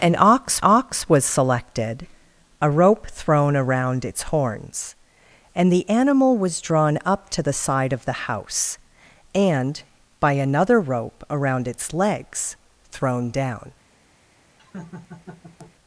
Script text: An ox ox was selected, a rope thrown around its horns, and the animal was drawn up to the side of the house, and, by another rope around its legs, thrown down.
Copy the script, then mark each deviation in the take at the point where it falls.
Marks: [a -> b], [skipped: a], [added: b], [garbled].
An ox ox was selected, a rope thrown around its horns, and the animal was drawn up to the side of the house, and, by another rope around its legs, thrown down.